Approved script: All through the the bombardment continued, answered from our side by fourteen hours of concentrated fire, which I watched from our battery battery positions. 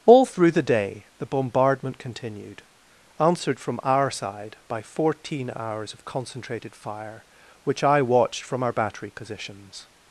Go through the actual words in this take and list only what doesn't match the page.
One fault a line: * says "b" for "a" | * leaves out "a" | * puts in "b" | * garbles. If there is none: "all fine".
* puts in "day"
* leaves out "battery"